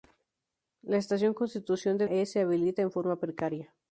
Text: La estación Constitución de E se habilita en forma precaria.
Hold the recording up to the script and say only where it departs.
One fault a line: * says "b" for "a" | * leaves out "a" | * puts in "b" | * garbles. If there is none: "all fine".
all fine